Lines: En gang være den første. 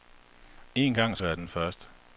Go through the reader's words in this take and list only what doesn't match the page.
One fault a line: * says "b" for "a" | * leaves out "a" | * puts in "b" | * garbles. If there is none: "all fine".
all fine